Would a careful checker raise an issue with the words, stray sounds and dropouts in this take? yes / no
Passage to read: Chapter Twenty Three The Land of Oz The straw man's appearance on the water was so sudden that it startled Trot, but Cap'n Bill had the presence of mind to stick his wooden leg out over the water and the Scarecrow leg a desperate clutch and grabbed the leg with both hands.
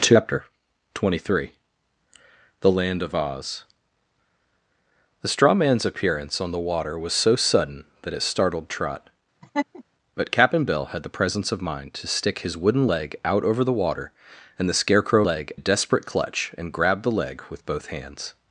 yes